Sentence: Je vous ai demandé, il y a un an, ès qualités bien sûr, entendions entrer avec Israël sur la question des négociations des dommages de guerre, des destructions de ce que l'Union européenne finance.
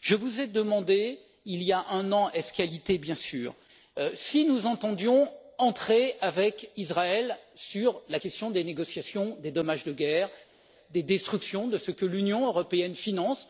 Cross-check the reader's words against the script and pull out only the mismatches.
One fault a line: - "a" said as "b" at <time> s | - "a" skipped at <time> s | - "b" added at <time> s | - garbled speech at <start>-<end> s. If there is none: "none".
- "si nous" added at 4.2 s